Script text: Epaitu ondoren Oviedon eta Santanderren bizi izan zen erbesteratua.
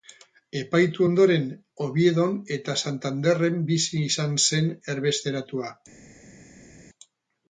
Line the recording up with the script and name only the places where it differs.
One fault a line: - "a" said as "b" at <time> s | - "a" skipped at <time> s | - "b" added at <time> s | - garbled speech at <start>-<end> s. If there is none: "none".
none